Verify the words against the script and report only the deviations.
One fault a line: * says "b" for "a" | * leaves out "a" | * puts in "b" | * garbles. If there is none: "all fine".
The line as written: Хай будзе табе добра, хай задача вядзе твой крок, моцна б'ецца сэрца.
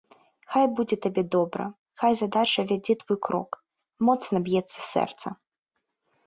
all fine